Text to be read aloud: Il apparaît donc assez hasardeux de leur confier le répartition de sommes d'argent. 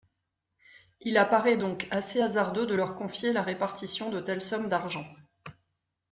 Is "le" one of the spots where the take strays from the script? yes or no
yes